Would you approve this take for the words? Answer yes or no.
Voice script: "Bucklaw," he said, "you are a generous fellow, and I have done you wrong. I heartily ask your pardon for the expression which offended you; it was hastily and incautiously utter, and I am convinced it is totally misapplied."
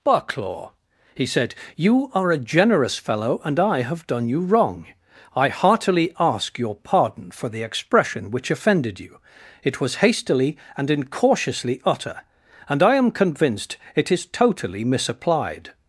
yes